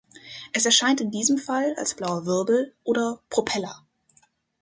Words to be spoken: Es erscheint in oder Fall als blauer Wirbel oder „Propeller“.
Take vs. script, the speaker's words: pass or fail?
fail